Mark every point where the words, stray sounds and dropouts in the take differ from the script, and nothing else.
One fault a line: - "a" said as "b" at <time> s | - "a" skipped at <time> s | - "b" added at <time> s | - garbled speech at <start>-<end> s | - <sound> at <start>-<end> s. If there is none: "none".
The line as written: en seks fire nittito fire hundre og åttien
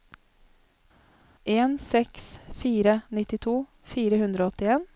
none